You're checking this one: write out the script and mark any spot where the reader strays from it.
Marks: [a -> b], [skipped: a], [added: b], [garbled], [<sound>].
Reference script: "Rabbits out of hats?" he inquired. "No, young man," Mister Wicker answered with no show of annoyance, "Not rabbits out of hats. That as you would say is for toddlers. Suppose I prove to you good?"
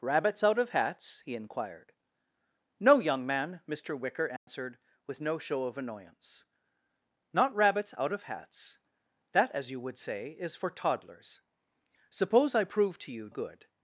"Rabbits out of hats?" he inquired. "No, young man," Mister Wicker answered [dropout] with no show of annoyance, "Not rabbits out of hats. That as you would say is for toddlers. Suppose I prove to you good?"